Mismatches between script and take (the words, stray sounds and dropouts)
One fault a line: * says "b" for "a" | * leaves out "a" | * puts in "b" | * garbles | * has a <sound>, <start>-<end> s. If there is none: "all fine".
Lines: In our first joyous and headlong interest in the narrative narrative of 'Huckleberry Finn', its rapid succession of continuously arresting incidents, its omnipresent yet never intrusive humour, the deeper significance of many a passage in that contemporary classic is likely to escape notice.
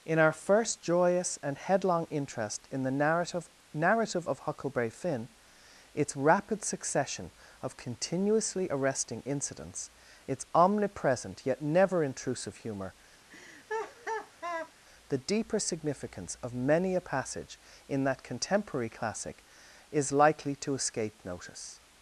* has a laugh, 13.3-14.7 s